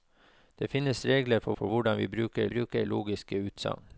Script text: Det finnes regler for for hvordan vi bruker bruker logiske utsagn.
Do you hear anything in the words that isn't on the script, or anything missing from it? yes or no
no